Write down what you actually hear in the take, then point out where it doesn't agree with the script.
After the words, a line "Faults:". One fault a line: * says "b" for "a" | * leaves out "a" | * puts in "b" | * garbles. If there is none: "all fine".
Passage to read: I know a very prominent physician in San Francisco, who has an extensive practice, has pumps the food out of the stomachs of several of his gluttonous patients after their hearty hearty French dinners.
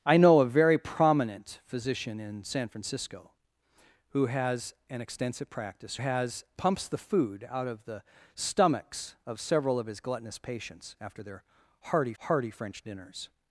I know a very prominent physician in San Francisco, who has an extensive practice, has pumps the food out of the stomachs of several of his gluttonous patients after their hearty hearty French dinners.
Faults:
all fine